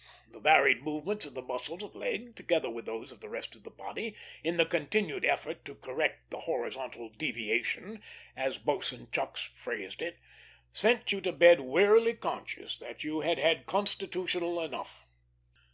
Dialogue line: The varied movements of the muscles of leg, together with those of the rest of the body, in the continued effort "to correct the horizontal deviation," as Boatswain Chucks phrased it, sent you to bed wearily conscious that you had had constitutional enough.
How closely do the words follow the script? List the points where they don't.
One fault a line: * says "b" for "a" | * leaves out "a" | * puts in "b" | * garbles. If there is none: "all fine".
all fine